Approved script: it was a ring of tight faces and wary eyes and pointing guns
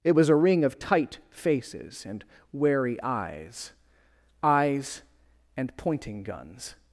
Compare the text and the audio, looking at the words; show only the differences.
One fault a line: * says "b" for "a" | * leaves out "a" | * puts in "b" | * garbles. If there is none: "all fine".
* puts in "eyes"